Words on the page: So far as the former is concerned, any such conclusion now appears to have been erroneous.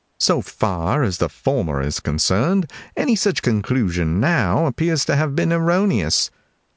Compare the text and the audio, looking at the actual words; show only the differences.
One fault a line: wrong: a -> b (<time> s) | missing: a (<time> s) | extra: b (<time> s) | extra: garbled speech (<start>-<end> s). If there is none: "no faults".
no faults